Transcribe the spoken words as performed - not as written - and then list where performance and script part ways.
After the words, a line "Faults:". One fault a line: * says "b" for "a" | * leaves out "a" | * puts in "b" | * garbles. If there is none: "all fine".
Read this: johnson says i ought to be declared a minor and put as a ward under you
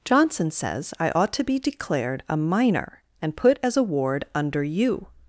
johnson says i ought to be declared a minor and put as a ward under you
Faults:
all fine